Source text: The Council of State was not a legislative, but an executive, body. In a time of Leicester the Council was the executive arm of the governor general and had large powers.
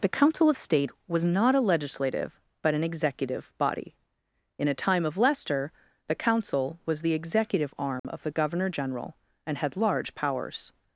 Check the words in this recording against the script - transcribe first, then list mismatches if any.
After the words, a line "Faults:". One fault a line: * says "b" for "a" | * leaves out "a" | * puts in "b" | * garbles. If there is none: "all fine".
The Council of State was not a legislative, but an executive, body. In a time of Leicester the Council was the executive arm of the governor general and had large powers.
Faults:
all fine